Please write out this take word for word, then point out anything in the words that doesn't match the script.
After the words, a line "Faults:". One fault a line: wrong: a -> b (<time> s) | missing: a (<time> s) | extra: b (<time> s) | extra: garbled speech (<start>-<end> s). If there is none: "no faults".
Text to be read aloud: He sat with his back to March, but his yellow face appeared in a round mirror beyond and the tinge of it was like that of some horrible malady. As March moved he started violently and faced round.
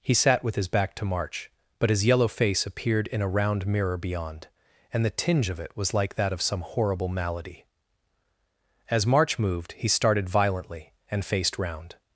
He sat with his back to March, but his yellow face appeared in a round mirror beyond and the tinge of it was like that of some horrible malady. As March moved he started violently and faced round.
Faults:
no faults